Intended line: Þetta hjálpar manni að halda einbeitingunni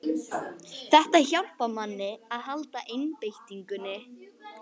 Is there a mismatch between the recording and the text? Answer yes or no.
no